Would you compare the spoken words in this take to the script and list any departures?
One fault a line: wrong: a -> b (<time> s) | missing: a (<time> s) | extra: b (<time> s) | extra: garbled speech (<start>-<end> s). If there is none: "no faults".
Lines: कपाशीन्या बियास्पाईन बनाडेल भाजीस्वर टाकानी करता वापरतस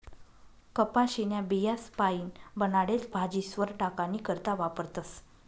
no faults